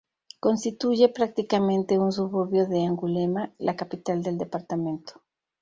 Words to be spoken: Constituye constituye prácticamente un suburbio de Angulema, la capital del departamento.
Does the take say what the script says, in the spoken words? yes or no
no